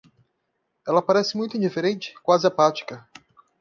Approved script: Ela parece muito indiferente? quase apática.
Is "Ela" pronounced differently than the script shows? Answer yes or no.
no